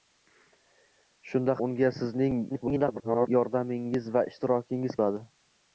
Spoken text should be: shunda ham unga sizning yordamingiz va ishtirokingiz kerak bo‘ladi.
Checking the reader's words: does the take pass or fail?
fail